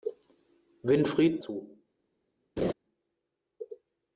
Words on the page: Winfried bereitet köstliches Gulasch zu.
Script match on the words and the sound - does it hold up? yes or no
no